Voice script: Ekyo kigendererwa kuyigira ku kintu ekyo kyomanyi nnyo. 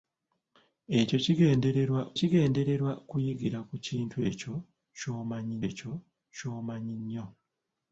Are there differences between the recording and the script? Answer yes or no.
yes